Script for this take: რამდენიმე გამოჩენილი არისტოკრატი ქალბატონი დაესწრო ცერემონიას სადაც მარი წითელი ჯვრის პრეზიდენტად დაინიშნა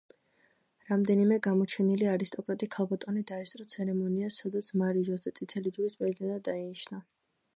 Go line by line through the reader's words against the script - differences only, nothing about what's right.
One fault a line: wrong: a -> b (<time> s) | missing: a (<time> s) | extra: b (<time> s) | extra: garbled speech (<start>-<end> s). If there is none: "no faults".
extra: ჟოზე (5.1 s)